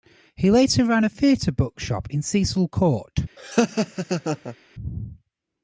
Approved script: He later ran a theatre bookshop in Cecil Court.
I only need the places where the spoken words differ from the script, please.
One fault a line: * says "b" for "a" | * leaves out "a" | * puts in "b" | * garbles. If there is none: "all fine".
all fine